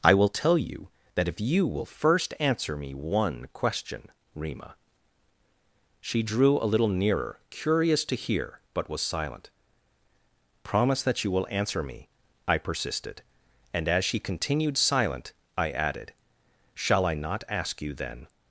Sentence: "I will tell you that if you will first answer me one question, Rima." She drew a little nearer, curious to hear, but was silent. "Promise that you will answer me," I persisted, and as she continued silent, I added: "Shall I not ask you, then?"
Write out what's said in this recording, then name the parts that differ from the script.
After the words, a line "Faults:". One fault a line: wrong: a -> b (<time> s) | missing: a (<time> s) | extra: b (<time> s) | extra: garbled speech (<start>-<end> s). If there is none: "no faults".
"I will tell you that if you will first answer me one question, Rima." She drew a little nearer, curious to hear, but was silent. "Promise that you will answer me," I persisted, and as she continued silent, I added: "Shall I not ask you, then?"
Faults:
no faults